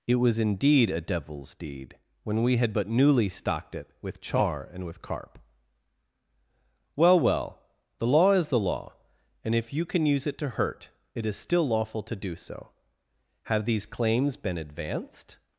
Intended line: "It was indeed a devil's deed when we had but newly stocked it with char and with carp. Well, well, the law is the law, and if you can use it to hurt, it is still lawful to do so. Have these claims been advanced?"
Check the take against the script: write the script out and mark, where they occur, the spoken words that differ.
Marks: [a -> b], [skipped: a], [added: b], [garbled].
"It was indeed a devil's deed when we had but newly stocked it with char and with carp. Well, well, the law is the law, and if you can use it to hurt, it is still lawful to do so. Have these claims been advanced?"